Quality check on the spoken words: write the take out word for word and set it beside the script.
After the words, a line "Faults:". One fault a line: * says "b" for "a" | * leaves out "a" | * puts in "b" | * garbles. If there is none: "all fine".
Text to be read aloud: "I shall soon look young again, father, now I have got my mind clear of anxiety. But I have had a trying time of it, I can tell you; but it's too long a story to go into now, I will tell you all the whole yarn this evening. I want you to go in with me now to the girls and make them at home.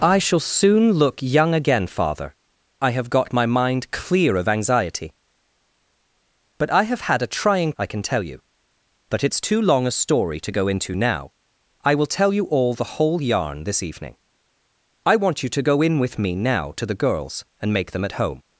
"I shall soon look young again, father, I have got my mind clear of anxiety. But I have had a trying I can tell you; but it's too long a story to go into now, I will tell you all the whole yarn this evening. I want you to go in with me now to the girls and make them at home.
Faults:
* leaves out "now"
* leaves out "time of it"